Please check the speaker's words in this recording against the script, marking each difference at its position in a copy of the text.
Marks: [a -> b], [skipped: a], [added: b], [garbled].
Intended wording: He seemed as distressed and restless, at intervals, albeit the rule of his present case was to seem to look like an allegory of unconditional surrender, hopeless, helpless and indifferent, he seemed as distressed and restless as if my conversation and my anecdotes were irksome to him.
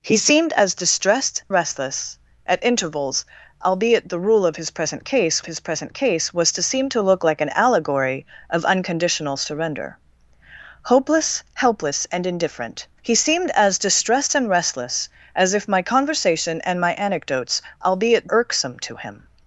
He seemed as distressed [skipped: and] restless, at intervals, albeit the rule of his present case [added: his present case] was to seem to look like an allegory of unconditional surrender, hopeless, helpless and indifferent, he seemed as distressed and restless as if my conversation and my anecdotes [were -> albeit] irksome to him.